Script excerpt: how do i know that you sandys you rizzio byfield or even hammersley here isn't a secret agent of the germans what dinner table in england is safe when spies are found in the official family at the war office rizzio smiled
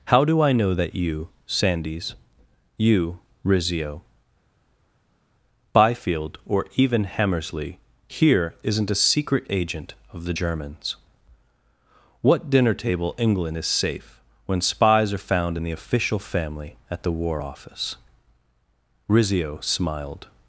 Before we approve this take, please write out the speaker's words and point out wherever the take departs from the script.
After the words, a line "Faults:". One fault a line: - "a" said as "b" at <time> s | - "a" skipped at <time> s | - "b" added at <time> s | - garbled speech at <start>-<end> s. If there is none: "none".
how do i know that you sandys you rizzio byfield or even hammersley here isn't a secret agent of the germans what dinner table england is safe when spies are found in the official family at the war office rizzio smiled
Faults:
- "in" skipped at 13.1 s